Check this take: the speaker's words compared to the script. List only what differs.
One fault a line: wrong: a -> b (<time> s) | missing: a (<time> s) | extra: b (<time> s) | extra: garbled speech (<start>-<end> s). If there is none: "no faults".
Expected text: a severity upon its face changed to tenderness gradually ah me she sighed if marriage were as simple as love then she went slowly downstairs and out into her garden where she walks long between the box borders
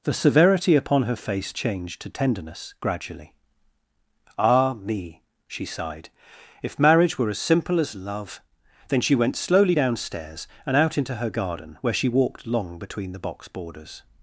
wrong: a -> the (0.0 s)
wrong: its -> her (1.0 s)
wrong: walks -> walked (12.1 s)